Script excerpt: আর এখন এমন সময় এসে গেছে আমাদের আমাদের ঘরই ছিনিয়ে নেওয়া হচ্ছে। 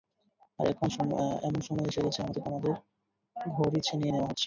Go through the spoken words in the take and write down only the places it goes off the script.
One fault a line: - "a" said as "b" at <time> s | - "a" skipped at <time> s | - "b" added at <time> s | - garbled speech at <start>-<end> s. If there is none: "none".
none